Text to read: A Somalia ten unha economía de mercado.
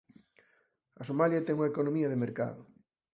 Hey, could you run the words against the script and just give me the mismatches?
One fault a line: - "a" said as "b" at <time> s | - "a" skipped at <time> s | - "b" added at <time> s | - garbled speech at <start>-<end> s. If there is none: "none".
none